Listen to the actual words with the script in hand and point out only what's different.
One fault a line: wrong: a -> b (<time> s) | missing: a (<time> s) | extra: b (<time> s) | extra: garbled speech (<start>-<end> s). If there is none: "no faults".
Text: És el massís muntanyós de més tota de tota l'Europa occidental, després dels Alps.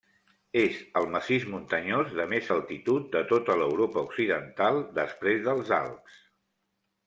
wrong: tota -> altitud (2.5 s)